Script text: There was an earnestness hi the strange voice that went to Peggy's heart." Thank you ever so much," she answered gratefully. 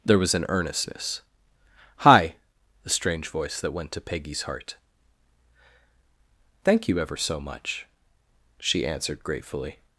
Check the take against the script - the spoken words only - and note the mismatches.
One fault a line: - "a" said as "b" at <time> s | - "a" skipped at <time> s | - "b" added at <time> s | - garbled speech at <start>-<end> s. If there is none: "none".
none